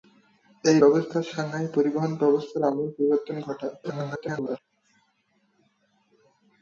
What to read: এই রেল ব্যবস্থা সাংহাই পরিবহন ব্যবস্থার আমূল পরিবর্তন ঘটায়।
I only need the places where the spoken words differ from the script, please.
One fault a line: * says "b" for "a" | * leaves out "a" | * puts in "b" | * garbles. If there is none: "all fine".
* leaves out "রেল"
* garbles